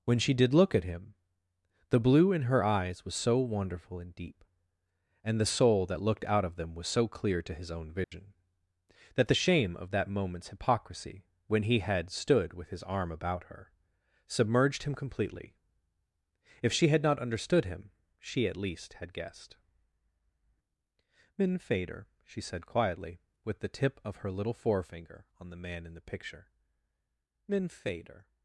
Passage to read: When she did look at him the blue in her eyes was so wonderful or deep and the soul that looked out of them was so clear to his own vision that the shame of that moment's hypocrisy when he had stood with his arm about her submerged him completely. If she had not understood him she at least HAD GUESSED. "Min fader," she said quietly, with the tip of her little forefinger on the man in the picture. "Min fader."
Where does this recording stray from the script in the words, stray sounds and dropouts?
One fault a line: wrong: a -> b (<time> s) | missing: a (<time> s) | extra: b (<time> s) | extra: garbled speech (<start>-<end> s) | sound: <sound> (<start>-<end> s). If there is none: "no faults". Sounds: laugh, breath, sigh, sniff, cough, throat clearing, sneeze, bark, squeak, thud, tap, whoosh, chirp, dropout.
wrong: or -> and (4.0 s)
sound: dropout (8.0-8.1 s)